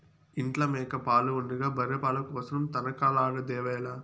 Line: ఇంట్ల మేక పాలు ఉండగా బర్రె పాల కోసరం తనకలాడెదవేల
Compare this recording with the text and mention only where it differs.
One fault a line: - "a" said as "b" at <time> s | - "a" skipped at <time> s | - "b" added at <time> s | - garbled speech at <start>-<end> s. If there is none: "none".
none